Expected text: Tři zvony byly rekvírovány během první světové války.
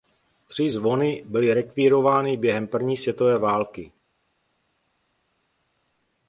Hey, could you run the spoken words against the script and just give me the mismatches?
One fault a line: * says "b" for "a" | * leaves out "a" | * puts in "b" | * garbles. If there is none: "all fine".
all fine